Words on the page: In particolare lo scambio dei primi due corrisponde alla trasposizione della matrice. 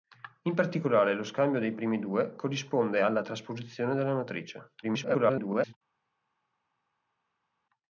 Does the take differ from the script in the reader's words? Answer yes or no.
yes